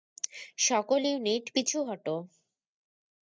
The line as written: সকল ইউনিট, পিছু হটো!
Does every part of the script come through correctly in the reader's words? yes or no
yes